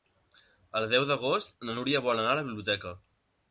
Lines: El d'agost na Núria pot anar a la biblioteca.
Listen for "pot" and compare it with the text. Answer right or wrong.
wrong